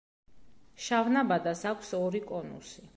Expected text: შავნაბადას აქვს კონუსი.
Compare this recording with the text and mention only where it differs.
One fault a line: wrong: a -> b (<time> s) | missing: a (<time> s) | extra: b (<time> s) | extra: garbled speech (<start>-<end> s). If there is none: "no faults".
extra: ორი (2.0 s)